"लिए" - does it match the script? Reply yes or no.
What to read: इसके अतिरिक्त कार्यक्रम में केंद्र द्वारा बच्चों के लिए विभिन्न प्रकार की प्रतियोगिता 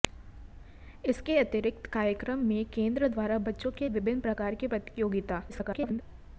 no